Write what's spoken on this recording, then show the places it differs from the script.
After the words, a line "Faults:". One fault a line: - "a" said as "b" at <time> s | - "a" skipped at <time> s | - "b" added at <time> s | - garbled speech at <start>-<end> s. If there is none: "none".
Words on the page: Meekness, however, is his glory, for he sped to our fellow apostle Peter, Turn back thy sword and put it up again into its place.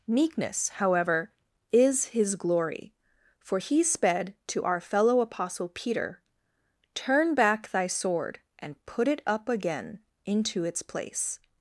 Meekness, however, is his glory, for he sped to our fellow apostle Peter, Turn back thy sword and put it up again into its place.
Faults:
none